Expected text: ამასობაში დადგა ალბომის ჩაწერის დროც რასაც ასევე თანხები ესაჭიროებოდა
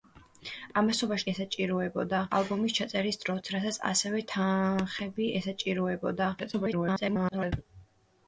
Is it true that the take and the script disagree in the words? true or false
true